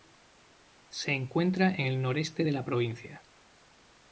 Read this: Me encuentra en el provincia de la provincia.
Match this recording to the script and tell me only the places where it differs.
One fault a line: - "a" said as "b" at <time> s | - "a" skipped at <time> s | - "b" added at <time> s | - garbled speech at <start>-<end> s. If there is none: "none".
- "Me" said as "Se" at 0.9 s
- "provincia" said as "noreste" at 2.0 s